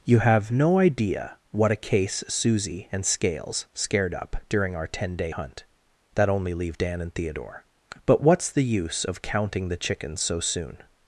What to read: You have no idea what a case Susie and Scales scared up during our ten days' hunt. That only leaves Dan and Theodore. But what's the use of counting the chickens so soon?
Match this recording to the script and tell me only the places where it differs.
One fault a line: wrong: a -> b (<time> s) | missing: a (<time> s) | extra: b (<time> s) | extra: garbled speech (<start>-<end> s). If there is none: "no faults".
wrong: days -> day (5.1 s)
wrong: leaves -> leave (6.5 s)